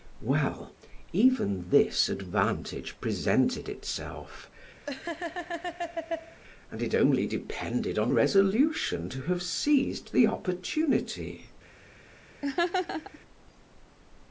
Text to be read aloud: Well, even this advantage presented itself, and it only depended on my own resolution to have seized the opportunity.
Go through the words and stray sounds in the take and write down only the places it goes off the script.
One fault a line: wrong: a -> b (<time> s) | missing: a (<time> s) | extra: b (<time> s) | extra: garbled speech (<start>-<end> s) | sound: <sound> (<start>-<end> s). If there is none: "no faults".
sound: laugh (4.9-6.4 s)
missing: my own (8.1 s)
sound: laugh (12.4-13.2 s)